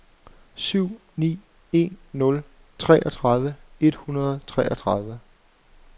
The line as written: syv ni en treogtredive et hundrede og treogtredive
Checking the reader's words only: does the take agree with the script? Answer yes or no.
no